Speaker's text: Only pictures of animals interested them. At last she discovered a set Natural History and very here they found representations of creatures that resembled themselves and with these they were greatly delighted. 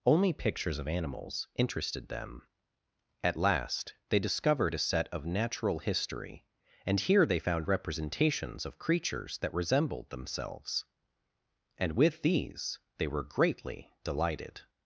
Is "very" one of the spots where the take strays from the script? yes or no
yes